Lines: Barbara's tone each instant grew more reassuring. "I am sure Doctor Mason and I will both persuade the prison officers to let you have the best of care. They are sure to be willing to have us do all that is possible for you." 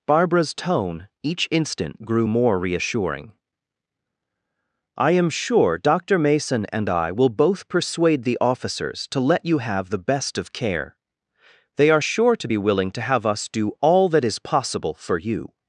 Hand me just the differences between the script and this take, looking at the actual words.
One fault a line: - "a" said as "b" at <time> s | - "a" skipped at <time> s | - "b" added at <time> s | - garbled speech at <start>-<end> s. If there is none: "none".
- "prison" skipped at 8.4 s